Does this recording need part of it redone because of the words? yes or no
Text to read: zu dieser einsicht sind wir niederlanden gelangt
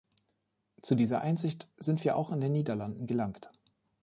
yes